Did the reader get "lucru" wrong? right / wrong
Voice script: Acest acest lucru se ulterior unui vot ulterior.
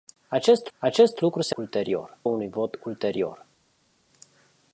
right